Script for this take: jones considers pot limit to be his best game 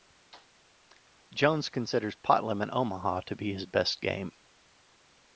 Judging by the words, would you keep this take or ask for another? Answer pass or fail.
fail